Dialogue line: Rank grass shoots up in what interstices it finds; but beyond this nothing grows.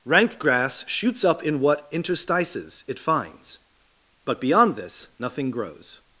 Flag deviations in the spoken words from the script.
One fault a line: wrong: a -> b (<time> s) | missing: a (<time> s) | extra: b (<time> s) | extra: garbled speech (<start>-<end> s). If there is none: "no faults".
no faults